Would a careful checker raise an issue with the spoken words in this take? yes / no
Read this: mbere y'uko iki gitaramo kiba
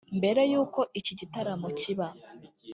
no